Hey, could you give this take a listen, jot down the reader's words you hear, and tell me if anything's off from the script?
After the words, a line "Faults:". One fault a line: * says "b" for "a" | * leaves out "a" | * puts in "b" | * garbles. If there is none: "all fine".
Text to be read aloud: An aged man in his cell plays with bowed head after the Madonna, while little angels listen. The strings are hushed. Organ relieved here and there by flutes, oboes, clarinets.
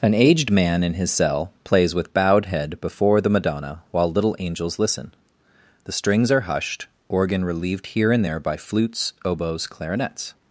An aged man in his cell plays with bowed head before the Madonna, while little angels listen. The strings are hushed. Organ relieved here and there by flutes, oboes, clarinets.
Faults:
* says "before" for "after"